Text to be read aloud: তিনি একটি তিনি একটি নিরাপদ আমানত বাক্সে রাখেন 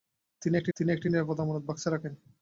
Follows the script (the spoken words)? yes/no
yes